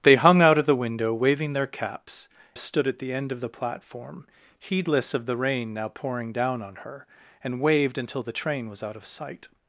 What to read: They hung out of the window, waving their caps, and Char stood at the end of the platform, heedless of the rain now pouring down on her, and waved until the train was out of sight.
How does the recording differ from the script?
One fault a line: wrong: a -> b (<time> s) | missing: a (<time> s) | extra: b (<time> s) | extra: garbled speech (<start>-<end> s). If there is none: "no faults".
missing: and Char (2.3 s)